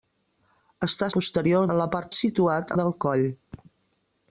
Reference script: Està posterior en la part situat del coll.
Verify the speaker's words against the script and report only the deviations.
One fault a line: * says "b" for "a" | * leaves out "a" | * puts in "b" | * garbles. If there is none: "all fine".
all fine